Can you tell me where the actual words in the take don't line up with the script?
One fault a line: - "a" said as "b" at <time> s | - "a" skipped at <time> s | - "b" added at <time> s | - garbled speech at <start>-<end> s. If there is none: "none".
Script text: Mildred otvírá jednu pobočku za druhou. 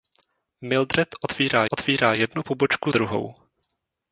- "otvírá" added at 1.7 s
- "za" skipped at 2.9 s